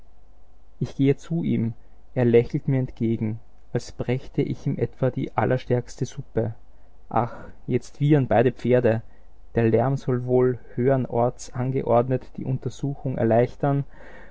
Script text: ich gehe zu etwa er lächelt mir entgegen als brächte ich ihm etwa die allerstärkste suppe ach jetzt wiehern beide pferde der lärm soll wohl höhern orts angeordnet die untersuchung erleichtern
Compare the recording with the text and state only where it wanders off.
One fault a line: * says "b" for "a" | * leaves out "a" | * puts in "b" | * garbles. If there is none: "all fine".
* says "ihm" for "etwa"